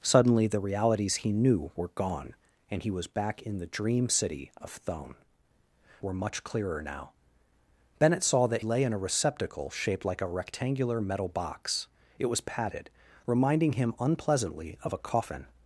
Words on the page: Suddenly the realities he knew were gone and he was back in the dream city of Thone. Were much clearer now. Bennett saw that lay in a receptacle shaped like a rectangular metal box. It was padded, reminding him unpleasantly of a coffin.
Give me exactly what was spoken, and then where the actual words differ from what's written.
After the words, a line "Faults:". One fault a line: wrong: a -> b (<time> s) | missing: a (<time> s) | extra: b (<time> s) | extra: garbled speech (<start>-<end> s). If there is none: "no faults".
Suddenly the realities he knew were gone and he was back in the dream city of Thone. Were much clearer now. Bennett saw that lay in a receptacle shaped like a rectangular metal box. It was padded, reminding him unpleasantly of a coffin.
Faults:
no faults